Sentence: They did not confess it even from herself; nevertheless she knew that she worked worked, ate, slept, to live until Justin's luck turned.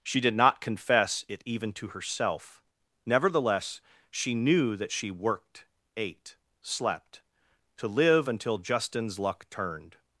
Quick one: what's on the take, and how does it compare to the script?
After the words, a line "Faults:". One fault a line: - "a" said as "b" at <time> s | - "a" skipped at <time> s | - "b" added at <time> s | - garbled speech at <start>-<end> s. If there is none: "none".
She did not confess it even to herself; nevertheless she knew that she worked, ate, slept, to live until Justin's luck turned.
Faults:
- "They" said as "She" at 0.0 s
- "from" said as "to" at 1.7 s
- "worked" skipped at 5.7 s